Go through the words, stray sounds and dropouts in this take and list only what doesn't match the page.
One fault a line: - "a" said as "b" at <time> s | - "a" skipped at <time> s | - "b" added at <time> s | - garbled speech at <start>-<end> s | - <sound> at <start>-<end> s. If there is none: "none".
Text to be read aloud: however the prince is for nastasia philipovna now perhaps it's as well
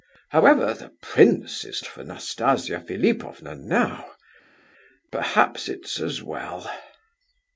none